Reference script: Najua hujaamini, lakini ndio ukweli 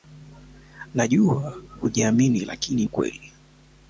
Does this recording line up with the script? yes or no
no